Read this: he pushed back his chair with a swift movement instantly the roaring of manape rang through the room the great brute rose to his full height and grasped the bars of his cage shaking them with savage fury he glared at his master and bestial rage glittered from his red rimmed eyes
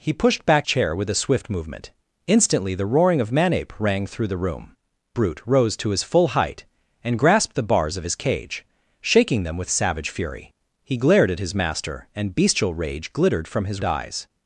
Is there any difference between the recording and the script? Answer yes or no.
yes